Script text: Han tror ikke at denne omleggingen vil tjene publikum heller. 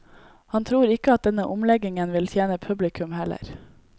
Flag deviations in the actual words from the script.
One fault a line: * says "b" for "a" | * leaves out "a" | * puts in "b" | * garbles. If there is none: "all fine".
all fine